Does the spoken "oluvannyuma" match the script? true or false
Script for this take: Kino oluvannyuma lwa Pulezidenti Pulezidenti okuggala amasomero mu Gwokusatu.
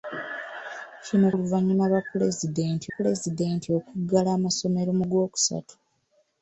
true